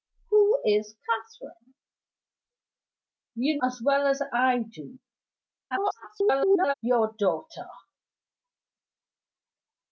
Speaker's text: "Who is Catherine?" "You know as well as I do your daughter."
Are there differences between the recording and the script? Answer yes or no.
yes